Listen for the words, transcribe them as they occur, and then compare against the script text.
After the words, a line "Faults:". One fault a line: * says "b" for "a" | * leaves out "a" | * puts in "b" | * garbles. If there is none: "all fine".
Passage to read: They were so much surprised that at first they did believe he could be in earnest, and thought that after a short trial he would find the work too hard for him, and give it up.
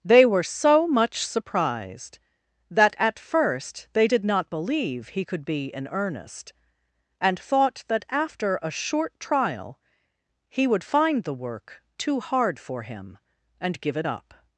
They were so much surprised that at first they did not believe he could be in earnest, and thought that after a short trial he would find the work too hard for him, and give it up.
Faults:
* puts in "not"